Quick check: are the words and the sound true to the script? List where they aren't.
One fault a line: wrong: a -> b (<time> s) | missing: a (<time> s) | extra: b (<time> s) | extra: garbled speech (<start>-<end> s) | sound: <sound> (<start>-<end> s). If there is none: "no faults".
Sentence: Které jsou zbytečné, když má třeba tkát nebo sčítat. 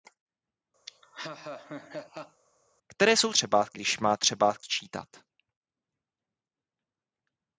sound: laugh (0.9-2.4 s)
wrong: zbytečné -> třeba (3.3 s)
missing: tkát nebo (4.5 s)